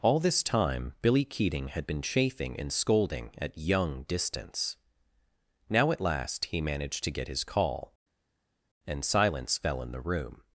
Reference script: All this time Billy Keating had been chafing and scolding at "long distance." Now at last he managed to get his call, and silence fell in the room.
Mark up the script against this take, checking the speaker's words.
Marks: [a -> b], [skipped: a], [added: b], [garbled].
All this time Billy Keating had been chafing and scolding at ["long -> young] distance." Now at last he managed to get his call, and silence fell in the room.